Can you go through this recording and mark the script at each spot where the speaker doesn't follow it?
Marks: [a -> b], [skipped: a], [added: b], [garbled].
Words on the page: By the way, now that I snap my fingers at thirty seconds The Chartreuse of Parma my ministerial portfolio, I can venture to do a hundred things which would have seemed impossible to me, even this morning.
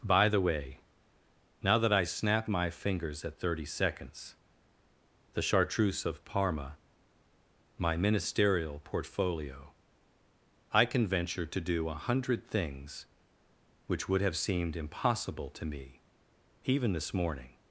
By the way, now that I snap my fingers at thirty seconds The Chartreuse of Parma my ministerial portfolio, I can venture to do a hundred things which would have seemed impossible to me, even this morning.